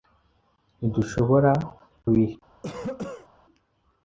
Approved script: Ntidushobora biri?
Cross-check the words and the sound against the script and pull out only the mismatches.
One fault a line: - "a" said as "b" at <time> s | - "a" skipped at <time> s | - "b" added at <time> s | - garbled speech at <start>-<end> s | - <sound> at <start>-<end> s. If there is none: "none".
- cough at 2.6-3.3 s